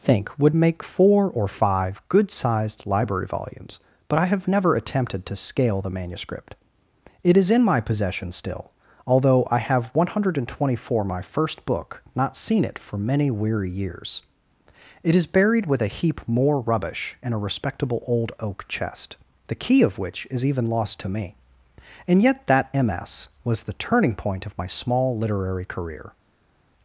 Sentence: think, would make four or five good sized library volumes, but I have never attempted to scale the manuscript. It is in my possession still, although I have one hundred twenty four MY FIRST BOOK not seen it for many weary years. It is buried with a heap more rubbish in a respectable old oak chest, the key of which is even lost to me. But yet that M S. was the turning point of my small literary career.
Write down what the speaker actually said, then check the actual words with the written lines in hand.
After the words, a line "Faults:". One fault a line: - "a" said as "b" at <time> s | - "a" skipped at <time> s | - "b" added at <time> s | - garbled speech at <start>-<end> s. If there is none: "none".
think, would make four or five good sized library volumes, but I have never attempted to scale the manuscript. It is in my possession still, although I have one hundred twenty four MY FIRST BOOK not seen it for many weary years. It is buried with a heap more rubbish in a respectable old oak chest, the key of which is even lost to me. And yet that M S. was the turning point of my small literary career.
Faults:
- "But" said as "And" at 22.1 s